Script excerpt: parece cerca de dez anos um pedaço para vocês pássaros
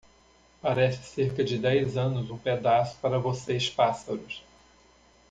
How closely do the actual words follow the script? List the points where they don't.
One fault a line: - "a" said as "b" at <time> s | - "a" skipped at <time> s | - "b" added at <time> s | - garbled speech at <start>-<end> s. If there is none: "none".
none